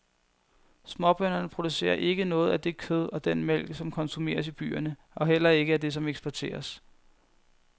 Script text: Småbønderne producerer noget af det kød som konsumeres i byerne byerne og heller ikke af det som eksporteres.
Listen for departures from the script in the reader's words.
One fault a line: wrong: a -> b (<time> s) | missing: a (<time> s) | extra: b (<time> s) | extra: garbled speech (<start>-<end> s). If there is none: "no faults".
extra: ikke (1.9 s)
extra: og den mælk (3.1 s)
missing: byerne (5.0 s)